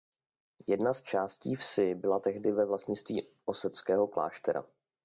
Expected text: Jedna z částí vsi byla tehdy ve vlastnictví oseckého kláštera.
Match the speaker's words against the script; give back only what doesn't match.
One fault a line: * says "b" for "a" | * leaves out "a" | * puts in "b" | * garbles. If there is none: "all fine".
all fine